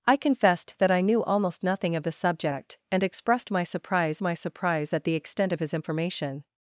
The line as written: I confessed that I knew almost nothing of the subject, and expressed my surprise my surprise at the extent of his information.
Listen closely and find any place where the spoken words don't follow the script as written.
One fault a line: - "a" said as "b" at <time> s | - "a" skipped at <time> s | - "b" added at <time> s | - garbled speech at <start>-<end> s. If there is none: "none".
none